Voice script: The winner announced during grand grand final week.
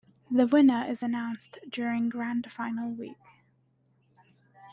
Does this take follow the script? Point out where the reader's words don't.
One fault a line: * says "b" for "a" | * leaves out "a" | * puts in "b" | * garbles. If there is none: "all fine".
* puts in "is"
* leaves out "grand"